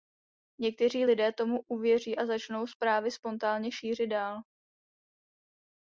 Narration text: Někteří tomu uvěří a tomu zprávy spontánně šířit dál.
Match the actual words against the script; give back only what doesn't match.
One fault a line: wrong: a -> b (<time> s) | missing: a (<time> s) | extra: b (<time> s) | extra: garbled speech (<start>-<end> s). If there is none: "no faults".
extra: lidé (1.0 s)
wrong: tomu -> začnou (2.3 s)